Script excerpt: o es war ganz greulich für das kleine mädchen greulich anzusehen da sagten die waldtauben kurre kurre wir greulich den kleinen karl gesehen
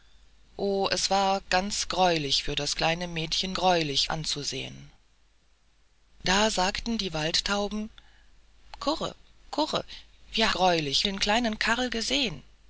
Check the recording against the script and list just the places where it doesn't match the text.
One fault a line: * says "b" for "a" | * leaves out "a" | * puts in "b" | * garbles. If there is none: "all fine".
all fine